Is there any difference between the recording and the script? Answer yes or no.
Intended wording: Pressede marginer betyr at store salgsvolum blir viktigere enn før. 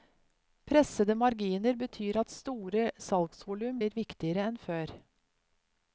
no